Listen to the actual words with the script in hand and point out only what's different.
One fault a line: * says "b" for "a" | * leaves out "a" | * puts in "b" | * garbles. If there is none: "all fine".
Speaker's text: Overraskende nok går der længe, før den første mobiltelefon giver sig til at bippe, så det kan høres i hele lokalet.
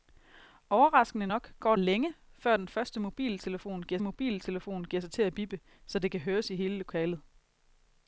* leaves out "der"
* puts in "mobiltelefon giver"